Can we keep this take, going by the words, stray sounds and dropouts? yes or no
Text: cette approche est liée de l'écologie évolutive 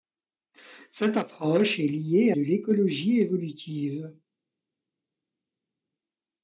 yes